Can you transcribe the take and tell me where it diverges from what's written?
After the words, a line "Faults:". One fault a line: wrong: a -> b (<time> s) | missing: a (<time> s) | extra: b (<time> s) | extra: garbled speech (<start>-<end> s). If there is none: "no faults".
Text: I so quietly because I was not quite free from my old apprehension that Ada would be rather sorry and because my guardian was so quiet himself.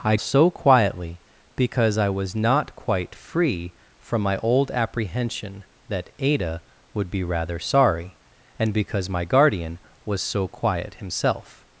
I so quietly because I was not quite free from my old apprehension that Ada would be rather sorry and because my guardian was so quiet himself.
Faults:
no faults